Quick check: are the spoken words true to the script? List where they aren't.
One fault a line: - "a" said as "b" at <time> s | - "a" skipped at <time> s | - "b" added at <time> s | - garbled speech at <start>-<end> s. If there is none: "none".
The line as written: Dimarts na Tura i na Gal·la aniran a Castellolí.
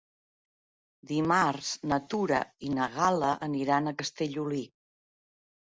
none